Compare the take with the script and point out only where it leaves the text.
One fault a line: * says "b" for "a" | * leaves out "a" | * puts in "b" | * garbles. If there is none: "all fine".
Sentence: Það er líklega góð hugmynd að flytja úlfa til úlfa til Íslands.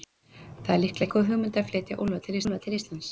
all fine